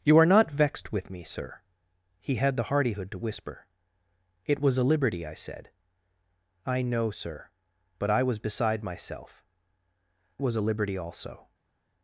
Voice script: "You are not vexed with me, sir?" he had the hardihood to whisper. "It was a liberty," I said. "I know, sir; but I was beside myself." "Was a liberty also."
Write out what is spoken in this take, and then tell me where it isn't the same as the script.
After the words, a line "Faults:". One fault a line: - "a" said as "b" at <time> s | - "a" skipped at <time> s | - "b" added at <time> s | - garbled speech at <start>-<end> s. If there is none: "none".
"You are not vexed with me, sir?" he had the hardihood to whisper. "It was a liberty," I said. "I know, sir; but I was beside myself." "Was a liberty also."
Faults:
none